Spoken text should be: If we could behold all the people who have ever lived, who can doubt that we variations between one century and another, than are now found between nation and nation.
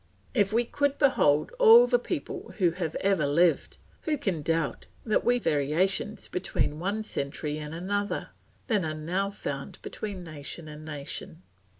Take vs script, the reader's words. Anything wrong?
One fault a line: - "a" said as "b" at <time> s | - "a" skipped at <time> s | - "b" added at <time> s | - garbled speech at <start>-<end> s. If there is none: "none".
none